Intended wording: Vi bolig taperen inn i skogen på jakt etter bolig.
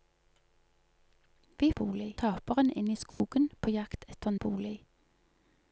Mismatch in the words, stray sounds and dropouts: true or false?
true